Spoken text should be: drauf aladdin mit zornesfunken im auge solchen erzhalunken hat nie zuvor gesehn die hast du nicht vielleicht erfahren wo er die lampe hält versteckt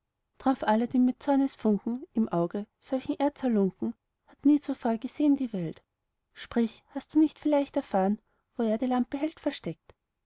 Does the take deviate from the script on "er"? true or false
false